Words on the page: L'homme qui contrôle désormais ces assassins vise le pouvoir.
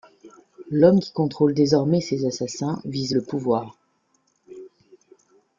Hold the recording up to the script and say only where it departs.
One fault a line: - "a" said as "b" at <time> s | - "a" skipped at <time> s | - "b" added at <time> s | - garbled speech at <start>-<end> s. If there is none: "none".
none